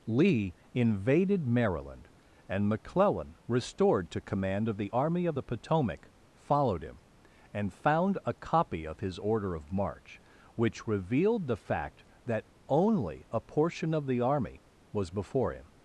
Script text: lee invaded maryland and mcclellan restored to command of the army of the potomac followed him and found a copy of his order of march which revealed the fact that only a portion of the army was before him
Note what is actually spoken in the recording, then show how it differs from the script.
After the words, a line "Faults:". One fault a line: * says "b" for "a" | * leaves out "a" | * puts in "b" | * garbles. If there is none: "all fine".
lee invaded maryland and mcclellan restored to command of the army of the potomac followed him and found a copy of his order of march which revealed the fact that only a portion of the army was before him
Faults:
all fine